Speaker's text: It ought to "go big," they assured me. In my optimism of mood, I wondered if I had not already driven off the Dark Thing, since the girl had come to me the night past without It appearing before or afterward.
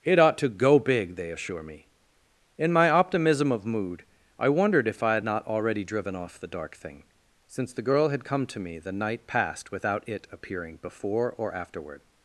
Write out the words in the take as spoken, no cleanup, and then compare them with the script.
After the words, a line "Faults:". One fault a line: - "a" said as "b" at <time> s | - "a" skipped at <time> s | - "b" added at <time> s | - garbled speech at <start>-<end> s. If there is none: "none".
It ought to "go big," they assure me. In my optimism of mood, I wondered if I had not already driven off the Dark Thing, since the girl had come to me the night past without It appearing before or afterward.
Faults:
- "assured" said as "assure" at 1.3 s